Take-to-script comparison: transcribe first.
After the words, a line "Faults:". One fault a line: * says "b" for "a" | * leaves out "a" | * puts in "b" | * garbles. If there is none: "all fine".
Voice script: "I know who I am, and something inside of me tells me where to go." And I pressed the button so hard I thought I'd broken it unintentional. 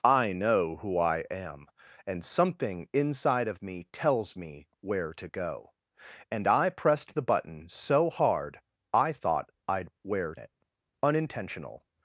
"I know who I am, and something inside of me tells me where to go." And I pressed the button so hard I thought I'd where it unintentional.
Faults:
* says "where" for "broken"